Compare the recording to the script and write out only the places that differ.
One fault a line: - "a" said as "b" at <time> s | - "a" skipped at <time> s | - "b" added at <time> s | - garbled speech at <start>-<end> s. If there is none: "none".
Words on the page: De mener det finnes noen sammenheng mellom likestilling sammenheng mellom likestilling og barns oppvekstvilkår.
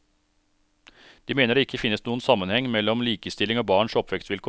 - "ikke" added at 1.7 s
- "sammenheng mellom likestilling" skipped at 3.6 s